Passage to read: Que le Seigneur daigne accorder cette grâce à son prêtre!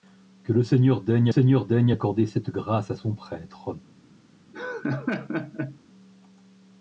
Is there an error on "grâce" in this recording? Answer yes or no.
no